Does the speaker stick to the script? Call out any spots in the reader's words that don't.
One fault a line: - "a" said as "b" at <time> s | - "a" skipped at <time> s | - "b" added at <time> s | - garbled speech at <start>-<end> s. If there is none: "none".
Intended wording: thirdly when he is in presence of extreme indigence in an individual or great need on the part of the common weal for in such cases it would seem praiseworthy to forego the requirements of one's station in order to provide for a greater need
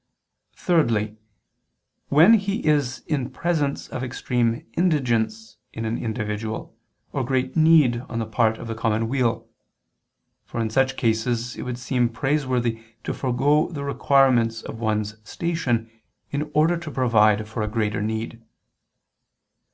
none